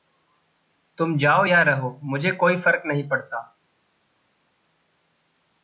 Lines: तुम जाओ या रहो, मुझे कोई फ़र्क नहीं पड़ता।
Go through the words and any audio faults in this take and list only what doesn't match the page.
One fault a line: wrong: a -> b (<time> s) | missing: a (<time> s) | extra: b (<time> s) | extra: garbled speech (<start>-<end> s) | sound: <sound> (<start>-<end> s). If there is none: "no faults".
no faults